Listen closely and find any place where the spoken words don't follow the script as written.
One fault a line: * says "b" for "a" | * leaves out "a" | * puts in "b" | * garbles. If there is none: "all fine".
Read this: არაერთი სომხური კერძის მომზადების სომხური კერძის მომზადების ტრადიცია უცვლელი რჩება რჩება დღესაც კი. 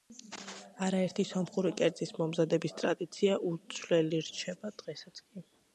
* leaves out "სომხური კერძის მომზადების"
* leaves out "რჩება"